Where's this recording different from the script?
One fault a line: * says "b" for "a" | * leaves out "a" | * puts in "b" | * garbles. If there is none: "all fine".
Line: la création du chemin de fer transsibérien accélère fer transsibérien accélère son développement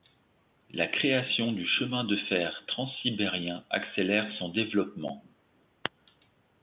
* leaves out "fer transsibérien accélère"